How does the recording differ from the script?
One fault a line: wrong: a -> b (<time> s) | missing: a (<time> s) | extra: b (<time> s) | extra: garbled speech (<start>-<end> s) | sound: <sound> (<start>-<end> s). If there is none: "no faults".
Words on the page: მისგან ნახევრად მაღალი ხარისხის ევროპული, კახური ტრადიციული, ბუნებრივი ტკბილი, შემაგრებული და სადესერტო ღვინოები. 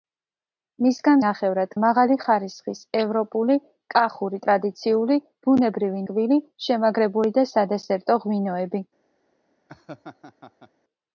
sound: laugh (9.7-10.7 s)